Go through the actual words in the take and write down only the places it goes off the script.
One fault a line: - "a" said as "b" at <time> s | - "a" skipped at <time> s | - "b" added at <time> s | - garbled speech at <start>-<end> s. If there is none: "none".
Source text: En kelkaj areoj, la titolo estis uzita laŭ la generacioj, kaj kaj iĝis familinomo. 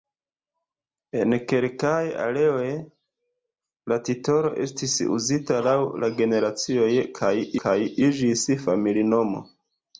none